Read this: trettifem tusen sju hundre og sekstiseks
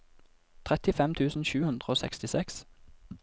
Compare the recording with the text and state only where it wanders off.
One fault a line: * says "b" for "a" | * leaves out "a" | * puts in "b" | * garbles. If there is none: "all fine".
all fine